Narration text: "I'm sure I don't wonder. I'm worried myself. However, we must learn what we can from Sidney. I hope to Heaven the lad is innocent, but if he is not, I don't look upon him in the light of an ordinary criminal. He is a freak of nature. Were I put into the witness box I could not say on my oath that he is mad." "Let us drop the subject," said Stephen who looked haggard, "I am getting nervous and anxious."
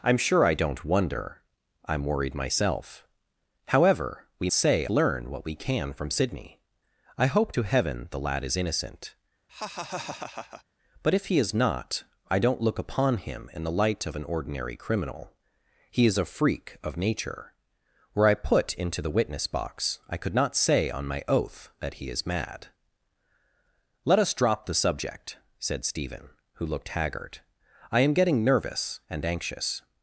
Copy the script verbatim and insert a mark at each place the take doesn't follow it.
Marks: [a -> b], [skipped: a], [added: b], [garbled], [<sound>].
"I'm sure I don't wonder. I'm worried myself. However, we [must -> say] learn what we can from Sidney. I hope to Heaven the lad is innocent, [laugh] but if he is not, I don't look upon him in the light of an ordinary criminal. He is a freak of nature. Were I put into the witness box I could not say on my oath that he is mad." "Let us drop the subject," said Stephen who looked haggard, "I am getting nervous and anxious."